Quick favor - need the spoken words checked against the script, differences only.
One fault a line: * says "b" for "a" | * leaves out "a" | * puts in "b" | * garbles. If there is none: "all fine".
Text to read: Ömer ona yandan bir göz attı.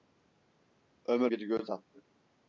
* leaves out "ona yandan"